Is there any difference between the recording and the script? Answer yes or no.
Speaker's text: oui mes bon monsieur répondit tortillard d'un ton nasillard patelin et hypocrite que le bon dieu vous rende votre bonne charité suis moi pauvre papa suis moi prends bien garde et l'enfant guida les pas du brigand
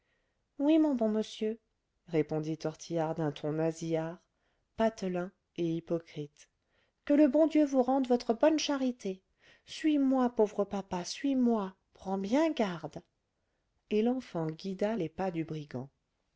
yes